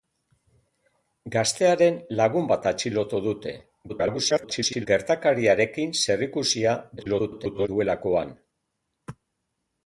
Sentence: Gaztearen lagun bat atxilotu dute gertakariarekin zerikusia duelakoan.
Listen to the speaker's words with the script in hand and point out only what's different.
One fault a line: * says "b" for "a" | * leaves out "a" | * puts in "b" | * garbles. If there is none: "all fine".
* garbles
* garbles